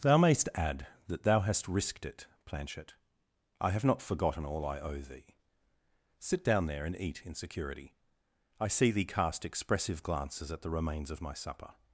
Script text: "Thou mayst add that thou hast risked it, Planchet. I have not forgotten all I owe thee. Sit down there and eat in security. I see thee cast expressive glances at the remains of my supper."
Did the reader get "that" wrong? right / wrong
right